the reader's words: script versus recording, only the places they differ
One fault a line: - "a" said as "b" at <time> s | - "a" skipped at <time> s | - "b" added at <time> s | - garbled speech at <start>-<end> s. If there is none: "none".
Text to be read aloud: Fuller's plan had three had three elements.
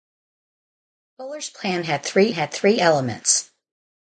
none